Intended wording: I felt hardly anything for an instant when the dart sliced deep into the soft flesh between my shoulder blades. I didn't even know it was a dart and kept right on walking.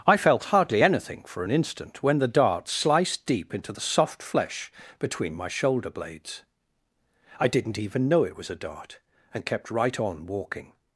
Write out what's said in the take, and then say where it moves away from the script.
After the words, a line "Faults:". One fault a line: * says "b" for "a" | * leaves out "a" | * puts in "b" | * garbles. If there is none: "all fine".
I felt hardly anything for an instant when the dart sliced deep into the soft flesh between my shoulder blades. I didn't even know it was a dart and kept right on walking.
Faults:
all fine